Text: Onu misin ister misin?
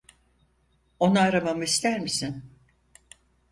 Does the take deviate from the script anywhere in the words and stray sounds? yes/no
yes